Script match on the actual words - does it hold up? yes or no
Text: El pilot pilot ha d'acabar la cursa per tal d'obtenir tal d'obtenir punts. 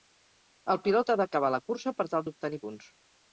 no